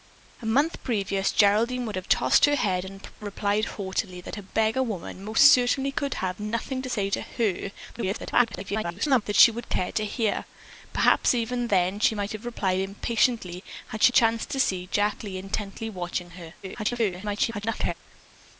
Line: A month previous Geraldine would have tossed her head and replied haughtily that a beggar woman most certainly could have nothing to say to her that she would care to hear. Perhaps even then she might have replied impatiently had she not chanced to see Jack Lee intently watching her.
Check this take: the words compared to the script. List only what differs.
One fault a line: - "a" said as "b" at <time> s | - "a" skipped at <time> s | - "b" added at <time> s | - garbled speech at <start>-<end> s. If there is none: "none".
- garbled speech at 7.9-9.2 s
- "not" skipped at 14.1 s
- garbled speech at 16.6-17.9 s